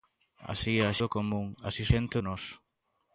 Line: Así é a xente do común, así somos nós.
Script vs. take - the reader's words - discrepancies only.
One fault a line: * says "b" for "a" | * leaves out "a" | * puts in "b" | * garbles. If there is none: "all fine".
* leaves out "xente"
* says "xente" for "somos"